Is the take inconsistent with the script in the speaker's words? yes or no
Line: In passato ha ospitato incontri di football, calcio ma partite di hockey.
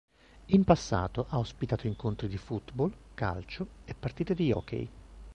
yes